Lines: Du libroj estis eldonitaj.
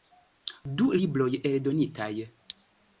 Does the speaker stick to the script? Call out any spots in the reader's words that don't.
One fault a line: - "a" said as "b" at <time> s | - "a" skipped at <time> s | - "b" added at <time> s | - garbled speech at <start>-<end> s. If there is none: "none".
- "estis" skipped at 1.3 s